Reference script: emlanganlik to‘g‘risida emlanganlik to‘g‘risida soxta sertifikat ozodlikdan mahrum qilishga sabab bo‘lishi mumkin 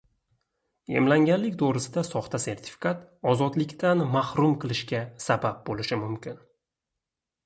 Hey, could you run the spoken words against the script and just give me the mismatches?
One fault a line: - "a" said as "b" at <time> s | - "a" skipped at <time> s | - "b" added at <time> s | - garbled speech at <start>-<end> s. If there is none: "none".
- "emlanganlik to‘g‘risida" skipped at 2.0 s